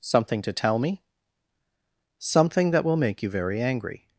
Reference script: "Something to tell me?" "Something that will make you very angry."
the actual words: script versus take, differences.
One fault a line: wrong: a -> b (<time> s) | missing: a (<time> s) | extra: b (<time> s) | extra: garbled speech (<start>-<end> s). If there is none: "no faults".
no faults